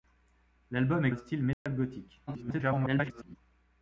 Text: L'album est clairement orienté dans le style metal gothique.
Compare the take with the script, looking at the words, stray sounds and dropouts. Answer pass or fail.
fail